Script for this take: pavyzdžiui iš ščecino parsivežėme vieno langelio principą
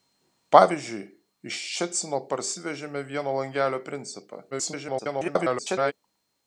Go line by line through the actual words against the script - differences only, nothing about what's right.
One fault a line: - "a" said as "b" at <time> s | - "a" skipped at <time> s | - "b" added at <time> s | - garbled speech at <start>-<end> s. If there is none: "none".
- garbled speech at 4.5-5.9 s